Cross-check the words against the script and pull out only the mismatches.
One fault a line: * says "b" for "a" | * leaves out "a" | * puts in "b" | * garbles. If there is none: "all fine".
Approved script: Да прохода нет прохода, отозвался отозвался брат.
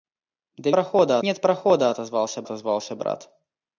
all fine